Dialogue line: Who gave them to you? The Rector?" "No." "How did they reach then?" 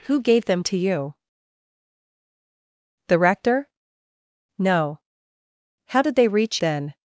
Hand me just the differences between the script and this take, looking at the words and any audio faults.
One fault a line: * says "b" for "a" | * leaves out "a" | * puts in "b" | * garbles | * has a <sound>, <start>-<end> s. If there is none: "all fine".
all fine